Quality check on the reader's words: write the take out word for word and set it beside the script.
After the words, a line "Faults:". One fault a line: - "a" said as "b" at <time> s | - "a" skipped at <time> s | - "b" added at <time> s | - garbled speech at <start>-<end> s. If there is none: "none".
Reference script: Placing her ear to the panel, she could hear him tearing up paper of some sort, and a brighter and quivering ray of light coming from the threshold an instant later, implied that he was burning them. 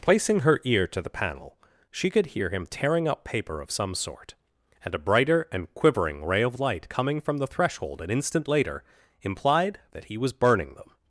Placing her ear to the panel, she could hear him tearing up paper of some sort, and a brighter and quivering ray of light coming from the threshold an instant later, implied that he was burning them.
Faults:
none